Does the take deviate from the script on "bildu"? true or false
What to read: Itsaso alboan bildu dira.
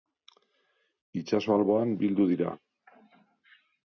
false